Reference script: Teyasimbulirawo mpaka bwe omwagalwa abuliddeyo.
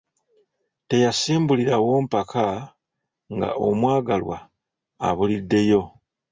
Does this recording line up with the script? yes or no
no